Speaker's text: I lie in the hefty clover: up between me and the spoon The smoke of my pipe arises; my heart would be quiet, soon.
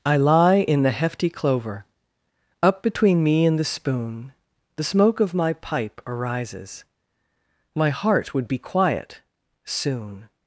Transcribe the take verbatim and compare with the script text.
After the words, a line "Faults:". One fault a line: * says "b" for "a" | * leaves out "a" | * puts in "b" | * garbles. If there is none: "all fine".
I lie in the hefty clover: up between me and the spoon The smoke of my pipe arises; my heart would be quiet, soon.
Faults:
all fine